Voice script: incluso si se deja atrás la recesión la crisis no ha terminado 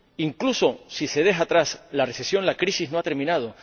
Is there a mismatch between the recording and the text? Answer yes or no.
no